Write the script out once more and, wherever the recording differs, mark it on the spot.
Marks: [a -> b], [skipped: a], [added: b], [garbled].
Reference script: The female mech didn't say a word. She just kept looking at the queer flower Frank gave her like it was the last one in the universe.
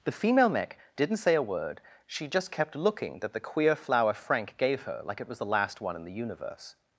The female mech didn't say a word. She just kept looking [at -> that] the queer flower Frank gave her like it was the last one in the universe.